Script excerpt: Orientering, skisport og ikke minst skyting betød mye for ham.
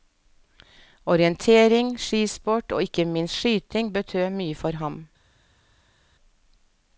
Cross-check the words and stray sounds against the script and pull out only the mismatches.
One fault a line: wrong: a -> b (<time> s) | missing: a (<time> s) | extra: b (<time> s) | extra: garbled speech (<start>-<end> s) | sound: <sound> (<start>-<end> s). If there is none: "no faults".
no faults